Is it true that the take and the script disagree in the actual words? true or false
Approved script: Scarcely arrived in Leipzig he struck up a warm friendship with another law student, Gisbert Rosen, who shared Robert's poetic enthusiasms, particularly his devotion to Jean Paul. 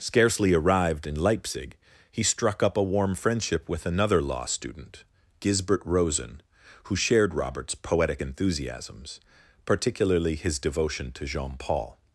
false